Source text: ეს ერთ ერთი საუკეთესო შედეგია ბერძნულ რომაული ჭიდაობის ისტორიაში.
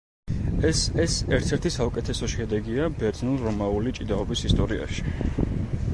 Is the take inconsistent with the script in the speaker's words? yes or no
yes